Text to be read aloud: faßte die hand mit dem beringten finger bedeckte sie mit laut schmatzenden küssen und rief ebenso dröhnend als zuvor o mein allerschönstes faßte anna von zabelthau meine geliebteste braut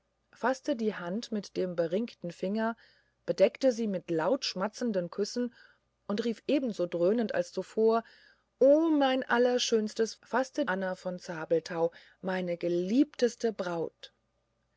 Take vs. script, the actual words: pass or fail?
pass